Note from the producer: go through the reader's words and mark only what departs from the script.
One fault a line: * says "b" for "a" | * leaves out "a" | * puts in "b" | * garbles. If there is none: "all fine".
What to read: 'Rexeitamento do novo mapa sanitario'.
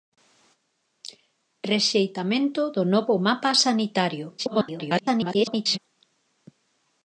* garbles